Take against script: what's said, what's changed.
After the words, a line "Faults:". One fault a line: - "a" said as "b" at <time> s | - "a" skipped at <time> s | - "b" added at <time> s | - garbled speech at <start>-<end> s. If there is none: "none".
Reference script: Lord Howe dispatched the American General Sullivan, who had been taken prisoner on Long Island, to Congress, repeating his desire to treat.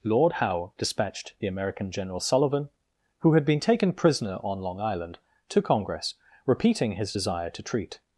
Lord Howe dispatched the American General Sullivan, who had been taken prisoner on Long Island, to Congress, repeating his desire to treat.
Faults:
none